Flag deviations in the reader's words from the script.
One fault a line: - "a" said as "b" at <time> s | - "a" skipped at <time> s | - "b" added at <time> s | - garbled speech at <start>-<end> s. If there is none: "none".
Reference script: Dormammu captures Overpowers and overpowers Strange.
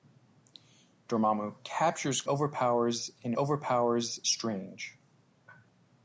none